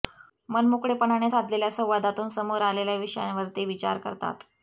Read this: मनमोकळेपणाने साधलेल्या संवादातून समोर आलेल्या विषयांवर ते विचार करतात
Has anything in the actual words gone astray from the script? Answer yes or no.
no